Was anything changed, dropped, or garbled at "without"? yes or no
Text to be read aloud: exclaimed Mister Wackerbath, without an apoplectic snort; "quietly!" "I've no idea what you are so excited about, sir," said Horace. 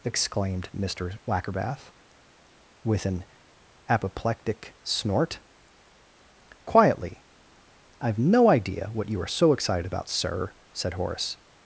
yes